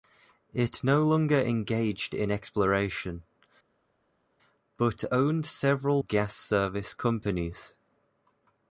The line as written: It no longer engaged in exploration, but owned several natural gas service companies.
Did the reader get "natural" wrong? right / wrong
wrong